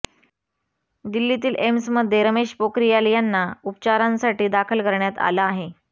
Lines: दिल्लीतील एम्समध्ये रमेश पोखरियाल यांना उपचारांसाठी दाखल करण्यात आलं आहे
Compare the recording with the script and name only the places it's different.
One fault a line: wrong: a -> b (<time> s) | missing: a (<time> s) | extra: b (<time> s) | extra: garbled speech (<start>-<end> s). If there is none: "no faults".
no faults